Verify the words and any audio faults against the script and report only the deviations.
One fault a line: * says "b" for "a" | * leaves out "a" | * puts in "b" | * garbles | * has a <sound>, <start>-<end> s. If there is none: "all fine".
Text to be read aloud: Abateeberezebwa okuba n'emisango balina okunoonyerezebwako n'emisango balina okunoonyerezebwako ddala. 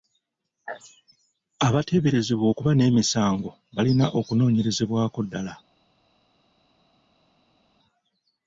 * leaves out "n'emisango balina okunoonyerezebwako"